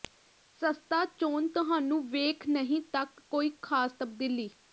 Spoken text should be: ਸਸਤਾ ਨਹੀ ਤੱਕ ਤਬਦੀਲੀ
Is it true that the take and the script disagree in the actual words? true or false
true